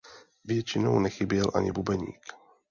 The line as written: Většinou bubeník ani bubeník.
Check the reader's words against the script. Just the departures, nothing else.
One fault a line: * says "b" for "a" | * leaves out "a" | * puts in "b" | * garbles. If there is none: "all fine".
* says "nechyběl" for "bubeník"